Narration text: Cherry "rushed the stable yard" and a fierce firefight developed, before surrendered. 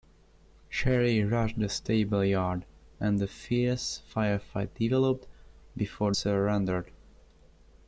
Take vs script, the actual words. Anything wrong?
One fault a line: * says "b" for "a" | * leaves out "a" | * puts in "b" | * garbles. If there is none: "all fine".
all fine